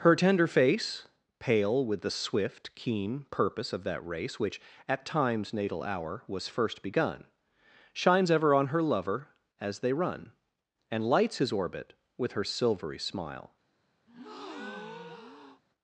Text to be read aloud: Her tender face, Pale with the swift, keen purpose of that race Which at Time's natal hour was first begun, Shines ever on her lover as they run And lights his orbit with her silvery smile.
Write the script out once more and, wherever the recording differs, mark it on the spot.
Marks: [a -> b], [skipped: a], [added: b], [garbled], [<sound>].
Her tender face, Pale with the swift, keen purpose of that race Which at Time's natal hour was first begun, Shines ever on her lover as they run And lights his orbit with her silvery smile. [breath]